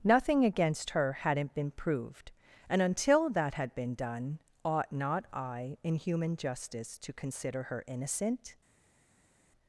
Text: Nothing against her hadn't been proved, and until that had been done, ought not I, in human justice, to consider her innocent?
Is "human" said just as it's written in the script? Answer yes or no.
yes